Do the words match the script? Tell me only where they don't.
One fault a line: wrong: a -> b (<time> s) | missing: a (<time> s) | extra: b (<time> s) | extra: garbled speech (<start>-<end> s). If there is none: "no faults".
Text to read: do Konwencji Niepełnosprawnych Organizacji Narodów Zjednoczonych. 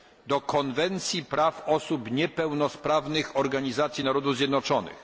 extra: Praw Osób (1.2 s)